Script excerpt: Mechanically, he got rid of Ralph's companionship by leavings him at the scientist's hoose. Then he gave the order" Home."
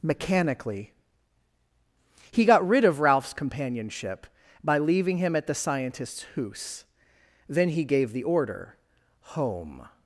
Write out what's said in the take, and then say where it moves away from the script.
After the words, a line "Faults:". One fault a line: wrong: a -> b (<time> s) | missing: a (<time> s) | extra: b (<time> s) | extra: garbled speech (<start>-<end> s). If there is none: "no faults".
Mechanically, he got rid of Ralph's companionship by leaving him at the scientist's hoose. Then he gave the order" Home."
Faults:
wrong: leavings -> leaving (4.8 s)